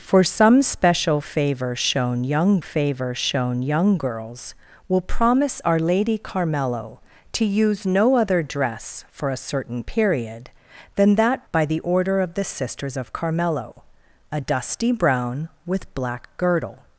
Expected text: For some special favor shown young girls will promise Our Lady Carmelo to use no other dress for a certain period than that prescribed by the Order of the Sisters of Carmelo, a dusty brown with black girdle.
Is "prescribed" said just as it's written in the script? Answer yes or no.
no